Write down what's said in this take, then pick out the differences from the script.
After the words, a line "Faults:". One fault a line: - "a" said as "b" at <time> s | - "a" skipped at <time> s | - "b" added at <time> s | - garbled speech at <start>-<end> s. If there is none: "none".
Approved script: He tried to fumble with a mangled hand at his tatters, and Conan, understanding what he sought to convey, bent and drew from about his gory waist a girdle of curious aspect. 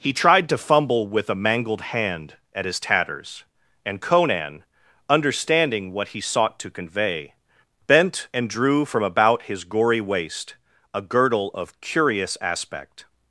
He tried to fumble with a mangled hand at his tatters, and Conan, understanding what he sought to convey, bent and drew from about his gory waist a girdle of curious aspect.
Faults:
none